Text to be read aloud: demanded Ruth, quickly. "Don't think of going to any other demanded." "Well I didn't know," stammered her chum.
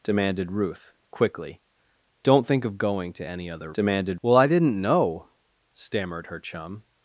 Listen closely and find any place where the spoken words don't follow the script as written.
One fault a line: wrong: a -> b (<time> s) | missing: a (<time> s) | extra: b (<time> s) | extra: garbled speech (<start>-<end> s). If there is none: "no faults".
no faults